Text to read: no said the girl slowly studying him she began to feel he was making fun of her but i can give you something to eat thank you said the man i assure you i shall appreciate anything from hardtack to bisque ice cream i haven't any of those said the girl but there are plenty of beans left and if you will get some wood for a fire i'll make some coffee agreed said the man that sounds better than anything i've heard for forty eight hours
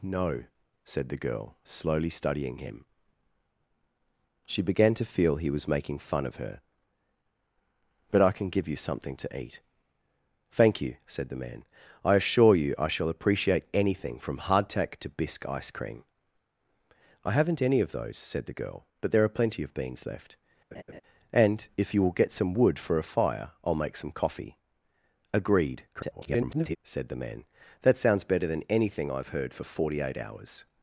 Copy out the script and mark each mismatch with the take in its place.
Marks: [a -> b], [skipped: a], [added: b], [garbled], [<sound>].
no said the girl slowly studying him she began to feel he was making fun of her but i can give you something to eat thank you said the man i assure you i shall appreciate anything from hardtack to bisque ice cream i haven't any of those said the girl but there are plenty of beans left [laugh] and if you will get some wood for a fire i'll make some coffee agreed [garbled] said the man that sounds better than anything i've heard for forty eight hours